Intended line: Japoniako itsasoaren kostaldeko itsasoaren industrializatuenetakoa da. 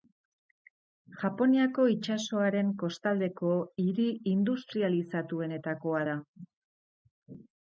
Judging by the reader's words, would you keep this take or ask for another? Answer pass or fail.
fail